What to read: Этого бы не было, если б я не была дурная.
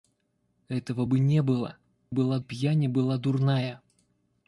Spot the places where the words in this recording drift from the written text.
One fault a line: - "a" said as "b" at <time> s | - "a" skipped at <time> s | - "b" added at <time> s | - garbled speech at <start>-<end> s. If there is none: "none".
- "если" said as "была" at 2.1 s